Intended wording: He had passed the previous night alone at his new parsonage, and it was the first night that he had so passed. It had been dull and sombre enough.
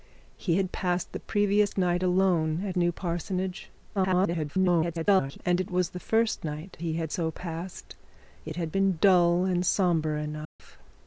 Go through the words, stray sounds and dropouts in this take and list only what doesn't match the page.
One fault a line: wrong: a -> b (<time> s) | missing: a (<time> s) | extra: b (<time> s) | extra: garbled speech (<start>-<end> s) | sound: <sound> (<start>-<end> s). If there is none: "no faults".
missing: his (2.8 s)
extra: garbled speech (3.9-5.4 s)
missing: that (6.8 s)
sound: dropout (10.4-10.6 s)